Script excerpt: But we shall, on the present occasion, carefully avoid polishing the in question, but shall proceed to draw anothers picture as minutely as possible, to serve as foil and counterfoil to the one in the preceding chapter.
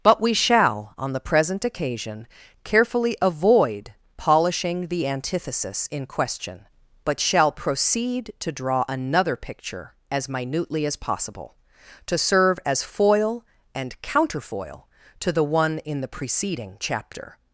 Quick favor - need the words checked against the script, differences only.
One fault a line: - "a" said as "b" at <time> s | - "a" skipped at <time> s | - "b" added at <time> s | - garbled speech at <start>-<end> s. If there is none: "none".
- "antithesis" added at 5.1 s
- "anothers" said as "another" at 8.9 s